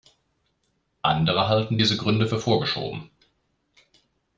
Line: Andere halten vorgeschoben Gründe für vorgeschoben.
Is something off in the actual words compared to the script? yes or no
yes